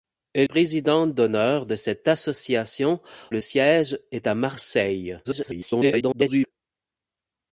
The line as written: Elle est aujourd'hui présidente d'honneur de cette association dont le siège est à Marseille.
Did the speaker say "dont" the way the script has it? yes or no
no